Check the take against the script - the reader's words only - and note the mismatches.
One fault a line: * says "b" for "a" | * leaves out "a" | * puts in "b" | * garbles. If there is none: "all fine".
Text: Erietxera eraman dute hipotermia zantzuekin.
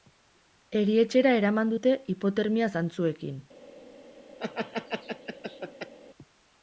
all fine